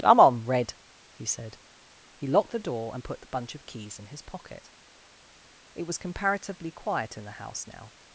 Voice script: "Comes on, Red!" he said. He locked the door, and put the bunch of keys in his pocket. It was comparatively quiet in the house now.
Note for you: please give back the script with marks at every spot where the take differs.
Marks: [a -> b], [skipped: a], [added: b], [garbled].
["Comes -> Come] on, Red!" he said. He locked the door, and put the bunch of keys in his pocket. It was comparatively quiet in the house now.